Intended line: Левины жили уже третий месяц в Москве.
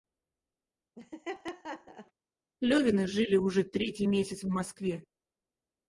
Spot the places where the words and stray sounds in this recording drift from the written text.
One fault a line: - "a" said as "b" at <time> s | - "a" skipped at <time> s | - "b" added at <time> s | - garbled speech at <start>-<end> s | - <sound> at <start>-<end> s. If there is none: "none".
- laugh at 1.0-2.1 s